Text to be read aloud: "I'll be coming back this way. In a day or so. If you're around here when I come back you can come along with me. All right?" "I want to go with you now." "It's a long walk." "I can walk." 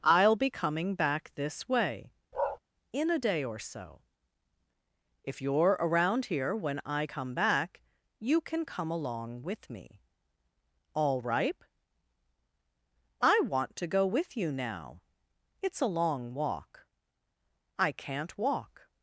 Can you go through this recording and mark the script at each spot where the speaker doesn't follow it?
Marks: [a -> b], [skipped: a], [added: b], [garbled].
"I'll be coming back this way. In a day or so. If you're around here when I come back you can come along with me. All [right?" -> ripe] "I want to go with you now." "It's a long walk." "I [can -> can't] walk."